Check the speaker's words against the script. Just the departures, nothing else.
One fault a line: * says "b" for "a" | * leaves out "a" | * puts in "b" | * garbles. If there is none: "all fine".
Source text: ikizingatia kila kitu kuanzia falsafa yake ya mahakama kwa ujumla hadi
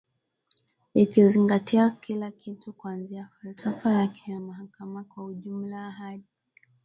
all fine